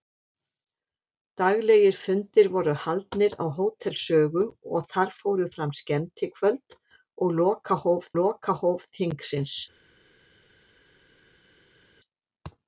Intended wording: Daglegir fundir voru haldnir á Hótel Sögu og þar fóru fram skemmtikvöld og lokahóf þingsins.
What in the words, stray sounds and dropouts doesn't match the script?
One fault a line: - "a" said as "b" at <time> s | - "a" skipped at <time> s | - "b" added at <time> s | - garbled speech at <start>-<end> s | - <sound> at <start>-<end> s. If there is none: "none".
- "lokahóf" added at 8.2 s